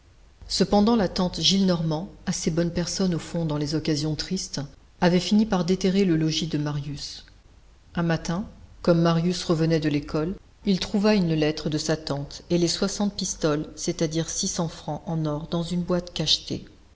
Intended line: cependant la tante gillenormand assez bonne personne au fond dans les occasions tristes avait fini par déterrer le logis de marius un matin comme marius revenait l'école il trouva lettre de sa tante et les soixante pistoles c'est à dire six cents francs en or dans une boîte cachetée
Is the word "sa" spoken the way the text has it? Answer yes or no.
yes